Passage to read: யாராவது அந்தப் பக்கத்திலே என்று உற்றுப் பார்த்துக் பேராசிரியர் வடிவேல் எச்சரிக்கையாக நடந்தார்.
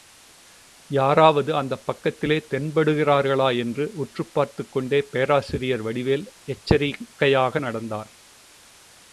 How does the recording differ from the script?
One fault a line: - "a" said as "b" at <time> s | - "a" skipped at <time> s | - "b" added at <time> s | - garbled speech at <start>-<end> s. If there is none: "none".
- "தென்படுகிறார்களா" added at 2.5 s
- "கொண்டே" added at 4.7 s